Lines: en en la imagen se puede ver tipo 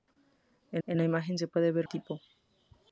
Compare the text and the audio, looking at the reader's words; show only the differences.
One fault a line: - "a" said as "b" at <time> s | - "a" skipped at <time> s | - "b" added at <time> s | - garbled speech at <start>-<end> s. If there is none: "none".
none